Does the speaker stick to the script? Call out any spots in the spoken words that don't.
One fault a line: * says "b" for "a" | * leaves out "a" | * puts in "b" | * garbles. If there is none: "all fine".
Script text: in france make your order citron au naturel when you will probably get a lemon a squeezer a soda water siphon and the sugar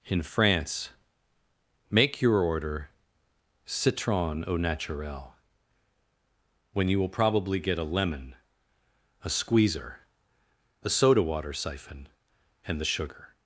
all fine